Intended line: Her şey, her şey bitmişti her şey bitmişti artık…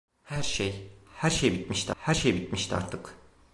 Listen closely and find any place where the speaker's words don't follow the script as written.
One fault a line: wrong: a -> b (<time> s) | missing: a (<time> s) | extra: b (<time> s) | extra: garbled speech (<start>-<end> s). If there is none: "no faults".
no faults